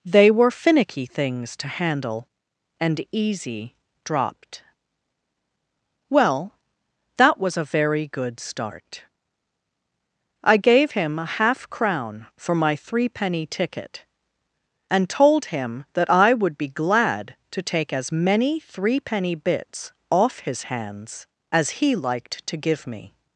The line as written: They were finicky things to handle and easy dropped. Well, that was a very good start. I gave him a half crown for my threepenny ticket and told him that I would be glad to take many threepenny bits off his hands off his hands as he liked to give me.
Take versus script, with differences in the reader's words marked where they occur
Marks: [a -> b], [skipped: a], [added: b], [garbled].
They were finicky things to handle and easy dropped. Well, that was a very good start. I gave him a half crown for my threepenny ticket and told him that I would be glad to take [added: as] many threepenny bits off his hands [skipped: off his hands] as he liked to give me.